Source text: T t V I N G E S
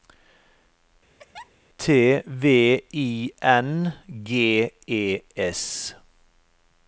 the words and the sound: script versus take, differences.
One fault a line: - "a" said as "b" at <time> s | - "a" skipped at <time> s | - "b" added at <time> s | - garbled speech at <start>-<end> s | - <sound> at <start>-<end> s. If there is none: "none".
- laugh at 1.2-1.5 s
- "t" skipped at 2.2 s